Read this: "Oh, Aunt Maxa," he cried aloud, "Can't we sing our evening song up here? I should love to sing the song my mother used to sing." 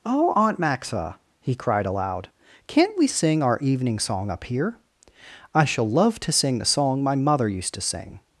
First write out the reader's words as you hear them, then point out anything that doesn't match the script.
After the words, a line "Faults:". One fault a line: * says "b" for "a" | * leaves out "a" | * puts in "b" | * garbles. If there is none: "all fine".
"Oh, Aunt Maxa," he cried aloud, "Can't we sing our evening song up here? I shall love to sing the song my mother used to sing."
Faults:
* says "shall" for "should"